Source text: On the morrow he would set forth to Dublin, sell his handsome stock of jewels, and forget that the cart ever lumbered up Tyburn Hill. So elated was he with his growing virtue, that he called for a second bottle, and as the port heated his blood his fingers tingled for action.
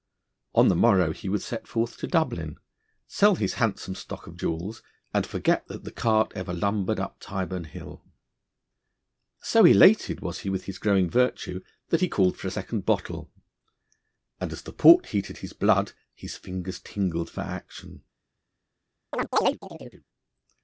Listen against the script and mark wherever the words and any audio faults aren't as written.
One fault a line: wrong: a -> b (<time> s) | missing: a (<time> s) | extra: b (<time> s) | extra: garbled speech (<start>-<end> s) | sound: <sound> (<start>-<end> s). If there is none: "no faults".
sound: chirp (19.1-20.0 s)